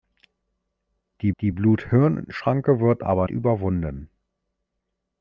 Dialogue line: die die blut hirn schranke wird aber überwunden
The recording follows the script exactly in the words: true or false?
true